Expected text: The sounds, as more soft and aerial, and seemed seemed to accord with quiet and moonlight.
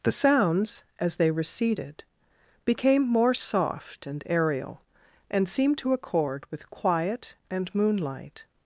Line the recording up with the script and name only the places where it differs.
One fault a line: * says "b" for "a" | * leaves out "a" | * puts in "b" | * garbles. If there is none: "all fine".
* puts in "they receded became"
* leaves out "seemed"